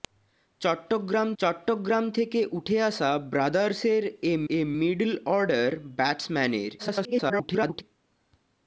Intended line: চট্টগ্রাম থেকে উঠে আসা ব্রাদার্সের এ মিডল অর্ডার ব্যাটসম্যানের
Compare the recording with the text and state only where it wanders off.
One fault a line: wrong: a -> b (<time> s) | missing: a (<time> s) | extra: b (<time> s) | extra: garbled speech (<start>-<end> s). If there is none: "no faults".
extra: চট্টগ্রাম (1.4 s)
extra: এ (4.5 s)
extra: garbled speech (6.8-7.8 s)